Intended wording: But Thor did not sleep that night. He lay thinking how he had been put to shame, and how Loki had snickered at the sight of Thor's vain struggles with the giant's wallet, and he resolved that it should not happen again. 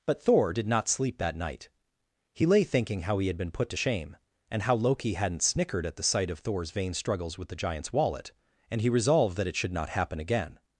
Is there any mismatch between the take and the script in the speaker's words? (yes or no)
yes